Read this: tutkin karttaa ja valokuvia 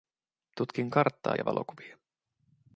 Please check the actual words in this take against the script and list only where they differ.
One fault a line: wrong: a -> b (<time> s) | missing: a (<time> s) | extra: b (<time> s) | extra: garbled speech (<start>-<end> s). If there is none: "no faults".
no faults